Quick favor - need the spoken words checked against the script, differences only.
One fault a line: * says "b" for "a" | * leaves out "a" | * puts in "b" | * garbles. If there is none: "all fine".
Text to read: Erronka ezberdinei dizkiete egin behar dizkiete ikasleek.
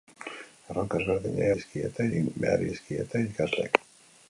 all fine